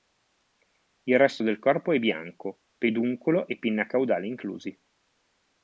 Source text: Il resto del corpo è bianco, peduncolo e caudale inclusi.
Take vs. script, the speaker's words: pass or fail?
fail